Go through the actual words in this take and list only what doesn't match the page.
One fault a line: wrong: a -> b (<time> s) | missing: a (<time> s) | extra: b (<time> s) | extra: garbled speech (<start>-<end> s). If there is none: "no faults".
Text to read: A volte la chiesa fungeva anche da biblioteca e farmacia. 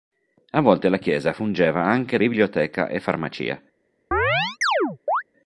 missing: da (2.2 s)